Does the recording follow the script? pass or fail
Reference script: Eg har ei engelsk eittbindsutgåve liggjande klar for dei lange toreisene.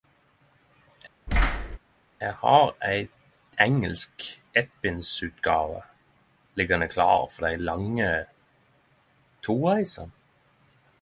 pass